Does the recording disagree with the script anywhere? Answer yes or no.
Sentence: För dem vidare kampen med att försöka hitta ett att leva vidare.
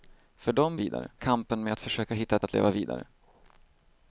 no